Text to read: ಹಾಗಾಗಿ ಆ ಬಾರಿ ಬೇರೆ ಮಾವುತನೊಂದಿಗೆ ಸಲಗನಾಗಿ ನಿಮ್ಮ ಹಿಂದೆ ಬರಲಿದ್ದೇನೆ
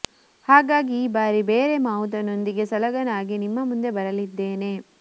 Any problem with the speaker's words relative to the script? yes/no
yes